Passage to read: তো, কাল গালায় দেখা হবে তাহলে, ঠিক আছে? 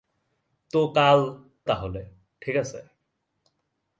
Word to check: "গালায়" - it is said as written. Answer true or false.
false